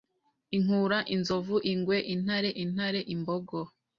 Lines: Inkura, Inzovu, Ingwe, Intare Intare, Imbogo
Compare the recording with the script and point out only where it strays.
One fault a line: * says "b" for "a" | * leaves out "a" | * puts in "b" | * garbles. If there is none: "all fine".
all fine